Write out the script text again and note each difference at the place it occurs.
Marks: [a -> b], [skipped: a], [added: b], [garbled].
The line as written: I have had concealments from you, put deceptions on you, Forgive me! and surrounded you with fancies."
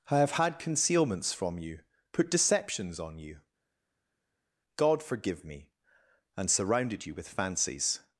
I have had concealments from you, put deceptions on you, [added: God] Forgive me! and surrounded you with fancies."